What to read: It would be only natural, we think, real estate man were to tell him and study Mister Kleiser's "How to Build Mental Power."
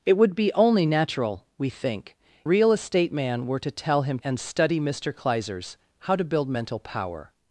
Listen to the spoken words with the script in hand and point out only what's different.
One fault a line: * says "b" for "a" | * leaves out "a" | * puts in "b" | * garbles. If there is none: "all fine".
all fine